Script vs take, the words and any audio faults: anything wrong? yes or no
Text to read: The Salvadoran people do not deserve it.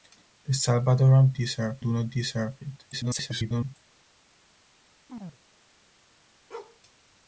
yes